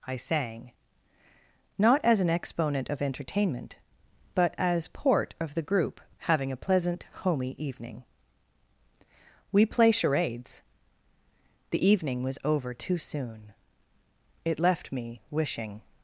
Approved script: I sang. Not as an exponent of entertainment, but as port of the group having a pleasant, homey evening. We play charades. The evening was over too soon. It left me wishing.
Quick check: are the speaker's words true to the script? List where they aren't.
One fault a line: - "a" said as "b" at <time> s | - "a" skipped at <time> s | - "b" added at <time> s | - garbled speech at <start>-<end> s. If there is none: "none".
none